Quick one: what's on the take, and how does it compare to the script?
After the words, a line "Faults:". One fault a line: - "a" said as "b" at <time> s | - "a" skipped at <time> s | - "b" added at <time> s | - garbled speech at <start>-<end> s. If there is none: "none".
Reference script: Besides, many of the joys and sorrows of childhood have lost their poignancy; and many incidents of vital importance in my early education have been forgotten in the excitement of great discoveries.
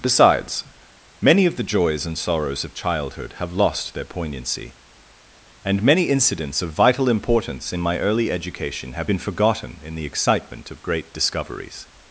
Besides, many of the joys and sorrows of childhood have lost their poignancy; and many incidents of vital importance in my early education have been forgotten in the excitement of great discoveries.
Faults:
none